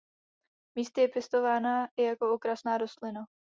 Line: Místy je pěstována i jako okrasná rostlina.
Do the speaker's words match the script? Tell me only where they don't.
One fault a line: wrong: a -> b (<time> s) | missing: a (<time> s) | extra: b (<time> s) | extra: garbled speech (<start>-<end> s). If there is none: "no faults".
no faults